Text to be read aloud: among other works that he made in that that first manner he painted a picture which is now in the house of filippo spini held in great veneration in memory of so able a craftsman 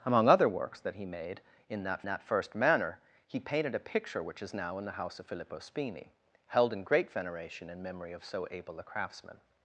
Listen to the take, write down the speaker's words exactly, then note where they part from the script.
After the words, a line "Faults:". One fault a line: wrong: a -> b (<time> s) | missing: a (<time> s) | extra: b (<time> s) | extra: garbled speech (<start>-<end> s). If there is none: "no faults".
among other works that he made in that that first manner he painted a picture which is now in the house of filippo spini held in great veneration in memory of so able a craftsman
Faults:
no faults